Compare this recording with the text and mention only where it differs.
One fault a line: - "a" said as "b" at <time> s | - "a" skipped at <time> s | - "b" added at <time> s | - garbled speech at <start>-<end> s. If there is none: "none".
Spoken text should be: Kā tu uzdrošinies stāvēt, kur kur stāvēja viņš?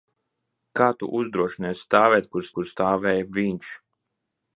none